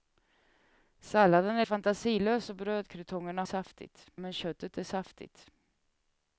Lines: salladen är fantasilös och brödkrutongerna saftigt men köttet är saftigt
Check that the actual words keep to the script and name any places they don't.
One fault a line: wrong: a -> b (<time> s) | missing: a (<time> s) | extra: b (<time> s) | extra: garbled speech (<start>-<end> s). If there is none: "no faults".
no faults